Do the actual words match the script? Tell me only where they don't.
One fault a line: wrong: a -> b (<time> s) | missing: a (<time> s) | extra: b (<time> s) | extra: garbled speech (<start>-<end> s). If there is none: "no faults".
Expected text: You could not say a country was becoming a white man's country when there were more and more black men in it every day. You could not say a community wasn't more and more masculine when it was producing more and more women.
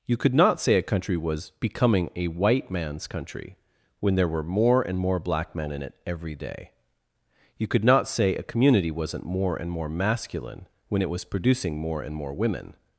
no faults